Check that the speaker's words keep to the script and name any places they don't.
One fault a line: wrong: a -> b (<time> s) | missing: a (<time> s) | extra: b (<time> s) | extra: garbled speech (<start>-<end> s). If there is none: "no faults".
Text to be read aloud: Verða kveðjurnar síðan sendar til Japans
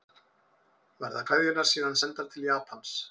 no faults